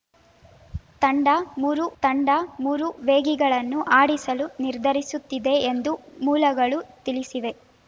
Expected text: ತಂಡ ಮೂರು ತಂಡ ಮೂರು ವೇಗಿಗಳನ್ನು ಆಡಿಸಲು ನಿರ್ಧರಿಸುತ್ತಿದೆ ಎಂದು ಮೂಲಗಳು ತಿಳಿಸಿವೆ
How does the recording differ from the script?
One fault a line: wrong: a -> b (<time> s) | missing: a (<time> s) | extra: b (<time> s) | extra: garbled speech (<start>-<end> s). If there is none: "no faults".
no faults